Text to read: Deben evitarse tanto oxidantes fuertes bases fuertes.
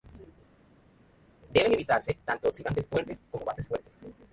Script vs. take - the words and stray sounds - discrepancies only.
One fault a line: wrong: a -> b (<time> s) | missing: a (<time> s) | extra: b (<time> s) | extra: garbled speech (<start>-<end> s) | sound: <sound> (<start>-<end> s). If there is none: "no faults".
extra: como (3.3 s)